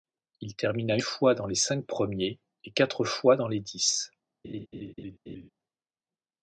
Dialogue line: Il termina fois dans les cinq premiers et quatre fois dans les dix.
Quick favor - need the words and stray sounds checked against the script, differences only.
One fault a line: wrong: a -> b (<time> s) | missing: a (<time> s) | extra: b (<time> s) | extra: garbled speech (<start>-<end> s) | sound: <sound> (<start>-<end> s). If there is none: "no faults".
sound: laugh (4.4-5.5 s)